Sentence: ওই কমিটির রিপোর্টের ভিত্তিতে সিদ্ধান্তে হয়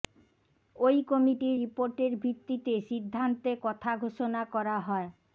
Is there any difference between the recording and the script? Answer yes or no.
yes